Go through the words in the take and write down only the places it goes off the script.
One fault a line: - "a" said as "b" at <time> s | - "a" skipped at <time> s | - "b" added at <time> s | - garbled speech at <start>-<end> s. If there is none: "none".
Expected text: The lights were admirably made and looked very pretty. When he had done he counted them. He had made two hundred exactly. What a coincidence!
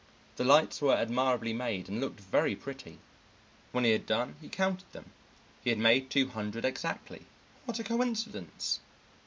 none